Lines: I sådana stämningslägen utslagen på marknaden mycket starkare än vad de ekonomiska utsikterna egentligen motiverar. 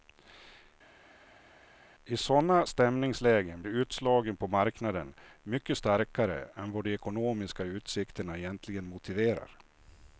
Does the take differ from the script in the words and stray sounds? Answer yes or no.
no